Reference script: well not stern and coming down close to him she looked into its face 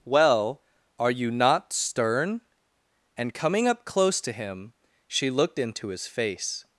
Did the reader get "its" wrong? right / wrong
wrong